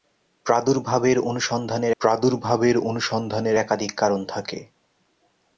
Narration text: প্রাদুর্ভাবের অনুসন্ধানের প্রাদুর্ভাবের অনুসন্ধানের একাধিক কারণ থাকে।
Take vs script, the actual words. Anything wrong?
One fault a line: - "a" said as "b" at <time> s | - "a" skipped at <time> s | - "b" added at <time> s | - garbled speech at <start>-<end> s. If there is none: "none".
none